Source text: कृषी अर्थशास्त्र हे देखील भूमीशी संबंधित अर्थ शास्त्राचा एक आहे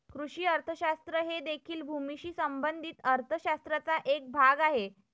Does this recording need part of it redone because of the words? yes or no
yes